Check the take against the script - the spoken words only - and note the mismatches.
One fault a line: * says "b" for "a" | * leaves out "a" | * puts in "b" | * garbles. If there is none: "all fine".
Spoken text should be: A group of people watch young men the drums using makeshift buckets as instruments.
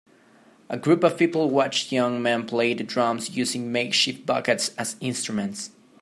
* puts in "play"